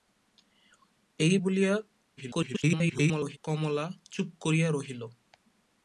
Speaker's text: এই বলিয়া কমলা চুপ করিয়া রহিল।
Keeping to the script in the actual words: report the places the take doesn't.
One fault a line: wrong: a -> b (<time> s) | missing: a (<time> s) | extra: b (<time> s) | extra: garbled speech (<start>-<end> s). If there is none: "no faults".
extra: garbled speech (2.2-3.4 s)